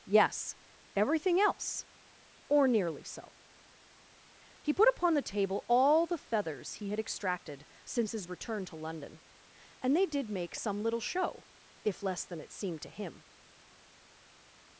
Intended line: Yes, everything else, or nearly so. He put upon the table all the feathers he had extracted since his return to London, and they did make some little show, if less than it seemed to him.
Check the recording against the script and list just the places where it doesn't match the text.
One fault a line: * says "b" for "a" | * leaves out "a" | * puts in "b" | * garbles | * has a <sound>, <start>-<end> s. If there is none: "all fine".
all fine